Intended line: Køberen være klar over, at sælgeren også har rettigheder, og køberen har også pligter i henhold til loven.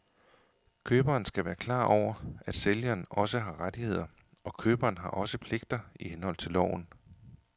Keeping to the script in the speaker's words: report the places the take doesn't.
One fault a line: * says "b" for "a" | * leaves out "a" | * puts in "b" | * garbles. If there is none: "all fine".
* puts in "skal"